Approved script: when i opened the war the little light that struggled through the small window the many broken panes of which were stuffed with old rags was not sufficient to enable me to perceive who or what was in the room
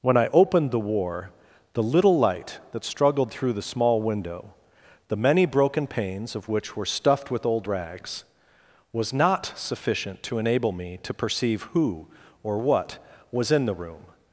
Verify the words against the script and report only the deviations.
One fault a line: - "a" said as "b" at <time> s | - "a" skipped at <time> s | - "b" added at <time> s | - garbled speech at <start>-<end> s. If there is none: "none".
none